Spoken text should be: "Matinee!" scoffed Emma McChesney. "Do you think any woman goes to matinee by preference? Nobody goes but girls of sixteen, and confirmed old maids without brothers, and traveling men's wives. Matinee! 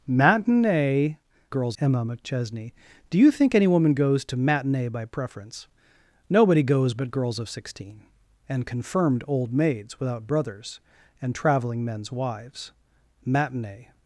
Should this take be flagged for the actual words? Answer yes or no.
yes